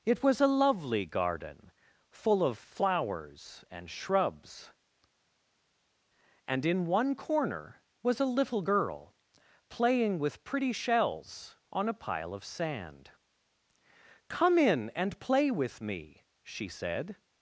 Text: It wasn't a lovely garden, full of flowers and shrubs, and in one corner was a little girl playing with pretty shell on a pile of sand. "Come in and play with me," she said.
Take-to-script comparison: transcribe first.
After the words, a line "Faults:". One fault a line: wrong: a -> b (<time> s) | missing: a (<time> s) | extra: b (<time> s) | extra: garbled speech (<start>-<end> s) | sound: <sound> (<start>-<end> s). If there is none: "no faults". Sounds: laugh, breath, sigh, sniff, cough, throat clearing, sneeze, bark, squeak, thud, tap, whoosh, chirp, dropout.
It was a lovely garden, full of flowers and shrubs, and in one corner was a little girl playing with pretty shells on a pile of sand. "Come in and play with me," she said.
Faults:
wrong: wasn't -> was (0.2 s)
wrong: shell -> shells (10.7 s)